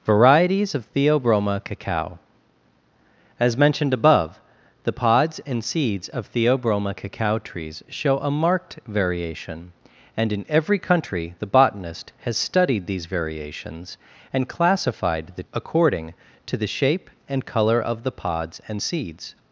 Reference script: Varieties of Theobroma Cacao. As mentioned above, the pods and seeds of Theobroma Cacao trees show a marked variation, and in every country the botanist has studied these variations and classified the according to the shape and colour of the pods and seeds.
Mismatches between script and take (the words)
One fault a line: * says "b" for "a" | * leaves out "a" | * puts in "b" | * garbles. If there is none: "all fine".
all fine